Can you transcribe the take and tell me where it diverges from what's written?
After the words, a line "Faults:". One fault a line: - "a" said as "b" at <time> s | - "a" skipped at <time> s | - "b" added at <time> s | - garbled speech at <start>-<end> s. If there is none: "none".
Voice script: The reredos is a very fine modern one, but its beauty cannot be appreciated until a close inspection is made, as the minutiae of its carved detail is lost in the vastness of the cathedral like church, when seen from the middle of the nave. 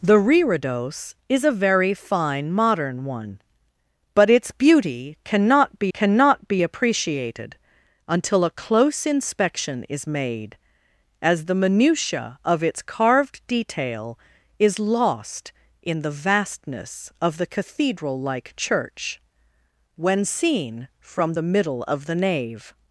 The reredos is a very fine modern one, but its beauty cannot be cannot be appreciated until a close inspection is made, as the minutiae of its carved detail is lost in the vastness of the cathedral like church, when seen from the middle of the nave.
Faults:
- "cannot be" added at 5.9 s